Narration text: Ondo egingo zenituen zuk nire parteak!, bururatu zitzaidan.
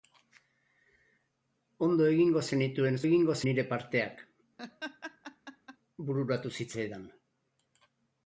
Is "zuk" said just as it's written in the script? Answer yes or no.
no